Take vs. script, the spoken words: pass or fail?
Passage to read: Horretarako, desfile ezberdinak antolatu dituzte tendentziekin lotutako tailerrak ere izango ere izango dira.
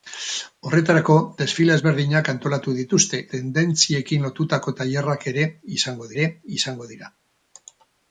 pass